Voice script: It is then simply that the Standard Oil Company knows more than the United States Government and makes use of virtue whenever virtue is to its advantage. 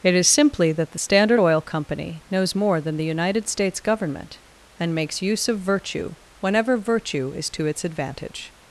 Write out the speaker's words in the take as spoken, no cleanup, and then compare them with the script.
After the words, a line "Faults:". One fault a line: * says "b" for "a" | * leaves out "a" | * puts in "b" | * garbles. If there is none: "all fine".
It is simply that the Standard Oil Company knows more than the United States Government and makes use of virtue whenever virtue is to its advantage.
Faults:
* leaves out "then"